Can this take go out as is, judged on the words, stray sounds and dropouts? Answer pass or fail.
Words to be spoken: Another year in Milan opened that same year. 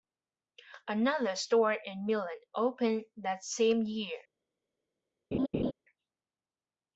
fail